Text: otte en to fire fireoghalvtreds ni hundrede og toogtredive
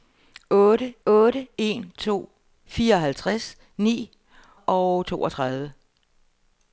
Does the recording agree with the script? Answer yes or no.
no